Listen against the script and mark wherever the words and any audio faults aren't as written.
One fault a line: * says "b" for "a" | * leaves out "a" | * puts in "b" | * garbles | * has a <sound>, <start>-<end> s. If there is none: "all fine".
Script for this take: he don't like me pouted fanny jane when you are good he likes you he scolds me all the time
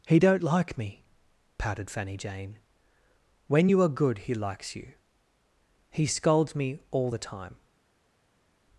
all fine